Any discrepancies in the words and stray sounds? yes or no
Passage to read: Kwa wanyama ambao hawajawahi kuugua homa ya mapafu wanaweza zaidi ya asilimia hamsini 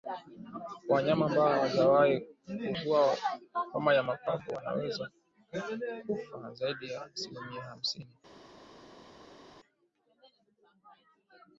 yes